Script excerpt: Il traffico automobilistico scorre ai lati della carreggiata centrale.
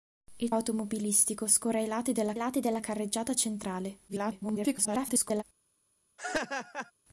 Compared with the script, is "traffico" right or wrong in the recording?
wrong